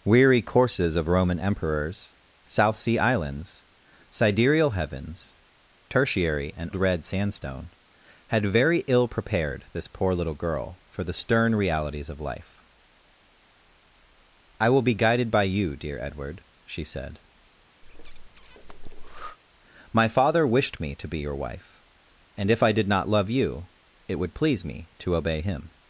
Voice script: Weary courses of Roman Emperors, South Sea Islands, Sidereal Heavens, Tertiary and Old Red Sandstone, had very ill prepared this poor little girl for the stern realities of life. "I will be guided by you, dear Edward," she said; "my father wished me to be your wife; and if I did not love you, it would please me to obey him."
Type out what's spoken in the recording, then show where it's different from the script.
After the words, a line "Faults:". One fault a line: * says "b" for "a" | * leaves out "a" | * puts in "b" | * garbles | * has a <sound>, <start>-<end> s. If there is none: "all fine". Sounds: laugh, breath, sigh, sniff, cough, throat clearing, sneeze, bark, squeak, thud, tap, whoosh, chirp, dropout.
Weary courses of Roman Emperors, South Sea Islands, Sidereal Heavens, Tertiary and Red Sandstone, had very ill prepared this poor little girl for the stern realities of life. "I will be guided by you, dear Edward," she said; "my father wished me to be your wife; and if I did not love you, it would please me to obey him."
Faults:
* leaves out "Old"
* has a breath, 17.8-19.4 s